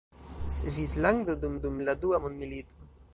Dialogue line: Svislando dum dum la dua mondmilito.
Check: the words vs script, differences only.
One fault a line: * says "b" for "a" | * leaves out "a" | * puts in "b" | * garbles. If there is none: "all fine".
all fine